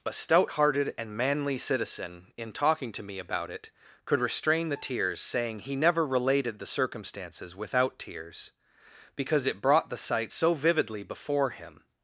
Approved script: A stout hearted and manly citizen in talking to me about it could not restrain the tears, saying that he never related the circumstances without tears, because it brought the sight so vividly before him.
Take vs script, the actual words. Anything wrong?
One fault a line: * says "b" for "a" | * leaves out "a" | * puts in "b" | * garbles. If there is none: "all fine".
* leaves out "not"
* leaves out "that"